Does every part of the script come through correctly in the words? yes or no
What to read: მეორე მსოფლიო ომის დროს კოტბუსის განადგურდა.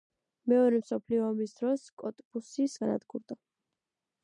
yes